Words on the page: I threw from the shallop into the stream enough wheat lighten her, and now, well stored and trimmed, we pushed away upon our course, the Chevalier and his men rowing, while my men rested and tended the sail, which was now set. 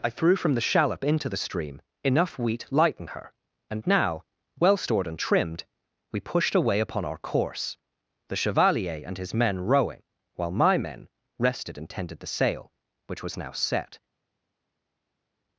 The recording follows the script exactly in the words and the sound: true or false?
true